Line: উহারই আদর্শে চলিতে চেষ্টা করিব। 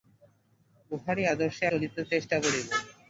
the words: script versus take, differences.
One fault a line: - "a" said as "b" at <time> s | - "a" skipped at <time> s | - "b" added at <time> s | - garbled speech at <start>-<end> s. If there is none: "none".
none